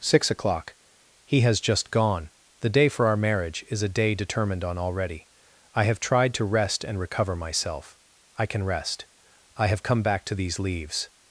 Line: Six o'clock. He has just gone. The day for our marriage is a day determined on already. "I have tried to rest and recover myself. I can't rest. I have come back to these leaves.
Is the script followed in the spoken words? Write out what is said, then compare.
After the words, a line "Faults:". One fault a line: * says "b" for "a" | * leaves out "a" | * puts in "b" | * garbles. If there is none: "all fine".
Six o'clock. He has just gone. The day for our marriage is a day determined on already. "I have tried to rest and recover myself. I can rest. I have come back to these leaves.
Faults:
* says "can" for "can't"